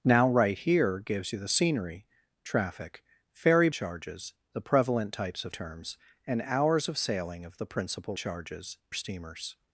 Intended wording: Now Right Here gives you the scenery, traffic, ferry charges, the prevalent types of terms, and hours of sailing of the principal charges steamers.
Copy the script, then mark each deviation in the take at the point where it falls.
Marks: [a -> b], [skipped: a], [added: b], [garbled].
Now Right Here gives you the scenery, traffic, ferry charges, the prevalent types of terms, and hours of sailing of the principal charges steamers.